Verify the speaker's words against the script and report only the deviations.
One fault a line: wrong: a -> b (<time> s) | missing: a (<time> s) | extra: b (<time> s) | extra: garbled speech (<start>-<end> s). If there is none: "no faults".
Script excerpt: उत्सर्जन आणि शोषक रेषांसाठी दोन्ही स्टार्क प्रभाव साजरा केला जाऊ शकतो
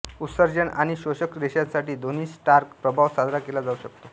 no faults